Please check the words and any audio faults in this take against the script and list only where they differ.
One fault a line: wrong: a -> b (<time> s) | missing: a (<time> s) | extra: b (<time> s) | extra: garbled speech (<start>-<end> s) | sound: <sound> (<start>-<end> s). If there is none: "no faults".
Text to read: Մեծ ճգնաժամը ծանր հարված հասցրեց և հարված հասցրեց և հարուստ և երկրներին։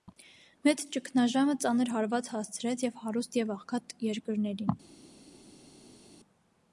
wrong: հարված հասցրեց -> հարուստ (3.0 s)
wrong: հարուստ և -> աղքատ (3.6 s)